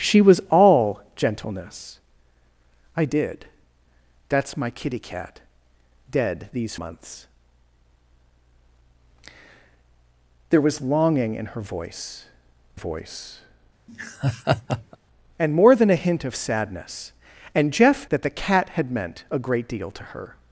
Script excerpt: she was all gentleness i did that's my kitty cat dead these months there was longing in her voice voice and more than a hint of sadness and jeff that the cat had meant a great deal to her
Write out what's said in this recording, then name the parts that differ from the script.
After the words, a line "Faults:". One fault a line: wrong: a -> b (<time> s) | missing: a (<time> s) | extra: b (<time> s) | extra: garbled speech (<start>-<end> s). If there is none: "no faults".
she was all gentleness i did that's my kitty cat dead these months there was longing in her voice voice and more than a hint of sadness and jeff that the cat had meant a great deal to her
Faults:
no faults